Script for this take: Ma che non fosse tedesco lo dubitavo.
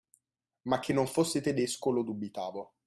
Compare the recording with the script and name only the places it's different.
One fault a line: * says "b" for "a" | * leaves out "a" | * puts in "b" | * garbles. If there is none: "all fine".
all fine